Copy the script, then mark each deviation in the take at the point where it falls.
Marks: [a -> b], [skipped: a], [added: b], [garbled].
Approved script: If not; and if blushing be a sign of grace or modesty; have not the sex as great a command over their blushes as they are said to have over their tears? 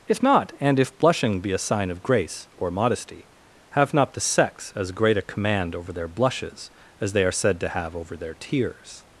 If not; and if blushing be a sign of grace or modesty; have not the sex as great a command over their blushes as they are said to have over their tears?